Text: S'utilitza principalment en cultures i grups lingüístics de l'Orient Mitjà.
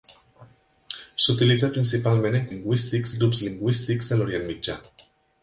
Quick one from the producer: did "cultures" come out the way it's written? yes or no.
no